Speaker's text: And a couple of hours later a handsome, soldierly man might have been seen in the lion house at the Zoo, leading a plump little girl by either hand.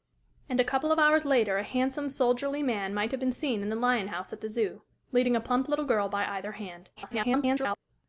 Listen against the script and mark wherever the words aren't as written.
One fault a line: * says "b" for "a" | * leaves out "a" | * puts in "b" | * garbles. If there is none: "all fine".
* garbles